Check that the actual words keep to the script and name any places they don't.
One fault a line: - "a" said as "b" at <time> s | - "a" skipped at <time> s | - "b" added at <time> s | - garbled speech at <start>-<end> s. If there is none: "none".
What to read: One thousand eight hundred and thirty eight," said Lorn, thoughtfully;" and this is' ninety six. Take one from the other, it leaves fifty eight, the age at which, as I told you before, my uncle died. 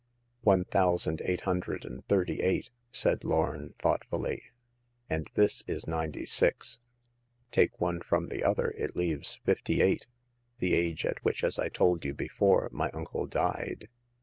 none